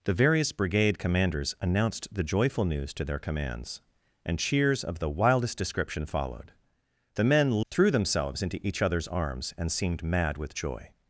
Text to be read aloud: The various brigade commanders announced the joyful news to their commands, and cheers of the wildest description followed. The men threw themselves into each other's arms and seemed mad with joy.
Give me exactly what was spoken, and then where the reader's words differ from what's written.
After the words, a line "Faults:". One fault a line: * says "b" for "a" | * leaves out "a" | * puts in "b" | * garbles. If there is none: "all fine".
The various brigade commanders announced the joyful news to their commands, and cheers of the wildest description followed. The men threw themselves into each other's arms and seemed mad with joy.
Faults:
all fine